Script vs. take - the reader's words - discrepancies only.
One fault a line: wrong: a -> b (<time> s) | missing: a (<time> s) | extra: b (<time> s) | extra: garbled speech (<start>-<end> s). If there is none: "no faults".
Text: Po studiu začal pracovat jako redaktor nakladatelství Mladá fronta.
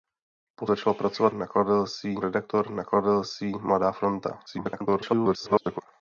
missing: studiu (0.7 s)
wrong: jako -> nakladatelství (1.3 s)
extra: garbled speech (4.5-5.8 s)